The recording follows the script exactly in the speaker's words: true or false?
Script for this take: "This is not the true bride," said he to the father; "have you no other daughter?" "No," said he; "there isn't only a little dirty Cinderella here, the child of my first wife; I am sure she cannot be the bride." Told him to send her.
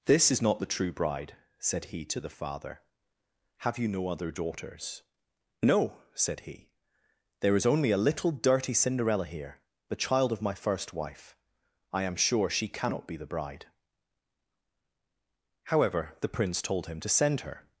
false